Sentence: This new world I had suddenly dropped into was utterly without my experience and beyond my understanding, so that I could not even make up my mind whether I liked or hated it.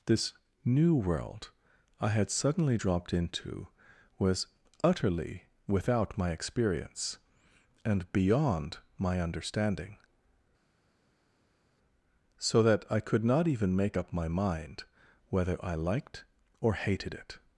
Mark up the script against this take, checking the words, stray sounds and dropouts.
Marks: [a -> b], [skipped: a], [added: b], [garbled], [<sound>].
This new world I had suddenly dropped into was utterly without my experience and beyond my understanding, so that I could not even make up my mind whether I liked or hated it.